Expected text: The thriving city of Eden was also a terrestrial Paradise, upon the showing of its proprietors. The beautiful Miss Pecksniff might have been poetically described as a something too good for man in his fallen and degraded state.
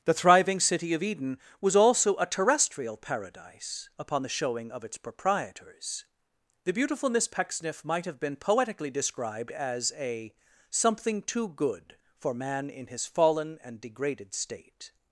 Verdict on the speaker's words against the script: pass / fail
pass